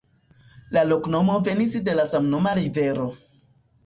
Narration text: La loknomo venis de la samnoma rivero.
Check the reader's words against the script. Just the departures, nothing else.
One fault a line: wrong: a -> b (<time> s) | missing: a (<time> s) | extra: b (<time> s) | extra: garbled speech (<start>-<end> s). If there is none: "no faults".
no faults